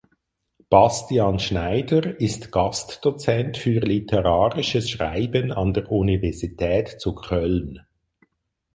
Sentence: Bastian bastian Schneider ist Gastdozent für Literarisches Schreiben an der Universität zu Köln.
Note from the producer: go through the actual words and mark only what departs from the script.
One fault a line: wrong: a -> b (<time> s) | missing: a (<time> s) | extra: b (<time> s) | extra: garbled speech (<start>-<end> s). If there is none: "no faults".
missing: bastian (1.4 s)